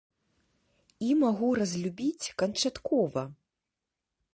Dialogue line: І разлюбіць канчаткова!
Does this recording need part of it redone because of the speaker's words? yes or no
yes